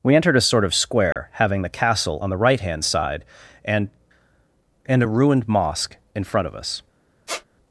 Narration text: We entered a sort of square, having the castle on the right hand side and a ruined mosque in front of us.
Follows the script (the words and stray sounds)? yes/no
no